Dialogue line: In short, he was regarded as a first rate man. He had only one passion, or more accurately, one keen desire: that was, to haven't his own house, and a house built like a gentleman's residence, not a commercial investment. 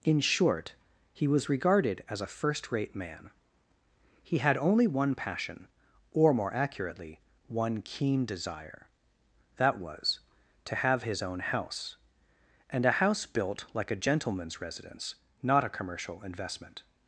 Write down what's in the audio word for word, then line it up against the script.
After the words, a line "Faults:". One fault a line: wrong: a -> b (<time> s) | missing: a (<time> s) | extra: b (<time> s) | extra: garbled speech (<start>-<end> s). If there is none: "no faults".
In short, he was regarded as a first rate man. He had only one passion, or more accurately, one keen desire: that was, to have his own house, and a house built like a gentleman's residence, not a commercial investment.
Faults:
wrong: haven't -> have (10.8 s)